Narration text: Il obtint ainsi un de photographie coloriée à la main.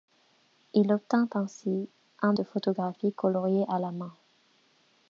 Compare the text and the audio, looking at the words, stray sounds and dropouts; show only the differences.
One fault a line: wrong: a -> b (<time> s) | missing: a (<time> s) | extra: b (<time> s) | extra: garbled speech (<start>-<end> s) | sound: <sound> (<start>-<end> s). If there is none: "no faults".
no faults